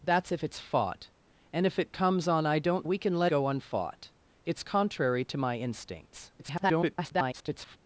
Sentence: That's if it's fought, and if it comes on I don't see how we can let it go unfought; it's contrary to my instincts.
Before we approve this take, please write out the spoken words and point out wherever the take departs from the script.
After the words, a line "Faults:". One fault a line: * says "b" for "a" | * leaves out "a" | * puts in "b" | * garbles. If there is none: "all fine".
That's if it's fought, and if it comes on I don't we can let go unfought; it's contrary to my instincts. [garbled]
Faults:
* leaves out "see how"
* leaves out "it"
* garbles